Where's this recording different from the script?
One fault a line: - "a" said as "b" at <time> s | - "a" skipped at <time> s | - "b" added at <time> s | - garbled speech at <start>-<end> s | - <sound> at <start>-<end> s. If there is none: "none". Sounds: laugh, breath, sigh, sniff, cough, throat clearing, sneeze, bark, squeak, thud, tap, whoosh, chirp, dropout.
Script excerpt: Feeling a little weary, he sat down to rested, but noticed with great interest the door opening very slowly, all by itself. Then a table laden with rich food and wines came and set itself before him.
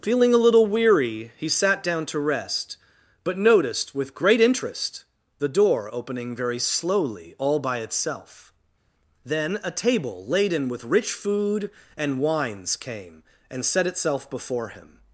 - "rested" said as "rest" at 2.2 s